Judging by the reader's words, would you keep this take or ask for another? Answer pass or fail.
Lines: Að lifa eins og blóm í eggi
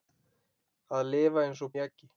fail